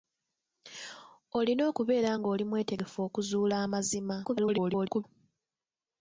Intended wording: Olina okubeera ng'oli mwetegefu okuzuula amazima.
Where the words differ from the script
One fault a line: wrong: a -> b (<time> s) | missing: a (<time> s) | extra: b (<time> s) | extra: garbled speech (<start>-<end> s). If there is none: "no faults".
extra: garbled speech (4.2-5.0 s)